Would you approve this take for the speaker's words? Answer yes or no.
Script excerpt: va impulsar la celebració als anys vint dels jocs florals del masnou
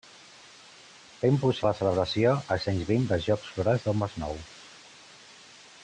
yes